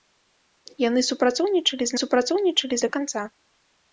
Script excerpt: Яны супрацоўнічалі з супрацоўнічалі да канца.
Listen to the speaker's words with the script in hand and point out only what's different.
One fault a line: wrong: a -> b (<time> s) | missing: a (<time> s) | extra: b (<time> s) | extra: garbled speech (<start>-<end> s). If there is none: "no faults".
no faults